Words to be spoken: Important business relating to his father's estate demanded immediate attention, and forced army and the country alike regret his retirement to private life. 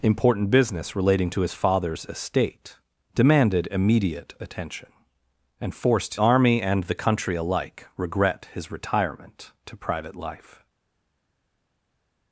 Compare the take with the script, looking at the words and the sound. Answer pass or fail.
pass